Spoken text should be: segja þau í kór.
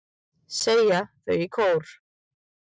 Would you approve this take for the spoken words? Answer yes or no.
yes